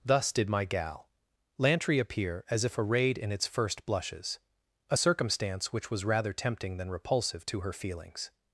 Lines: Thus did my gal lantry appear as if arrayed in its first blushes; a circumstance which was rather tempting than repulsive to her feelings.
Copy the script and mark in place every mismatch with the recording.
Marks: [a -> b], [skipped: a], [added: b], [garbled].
Thus did my gal lantry appear as if arrayed in its first blushes; a circumstance which was rather tempting than repulsive to her feelings.